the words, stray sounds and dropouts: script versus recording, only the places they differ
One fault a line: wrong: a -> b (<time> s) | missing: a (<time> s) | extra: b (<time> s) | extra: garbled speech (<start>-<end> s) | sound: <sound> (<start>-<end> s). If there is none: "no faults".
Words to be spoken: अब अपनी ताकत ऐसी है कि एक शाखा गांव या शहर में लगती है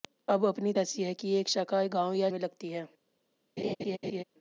missing: ताकत (0.7 s)
missing: शहर (2.3 s)
sound: laugh (3.6-4.2 s)